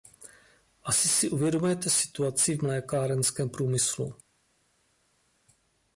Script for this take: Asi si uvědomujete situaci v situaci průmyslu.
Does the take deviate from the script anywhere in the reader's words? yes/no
yes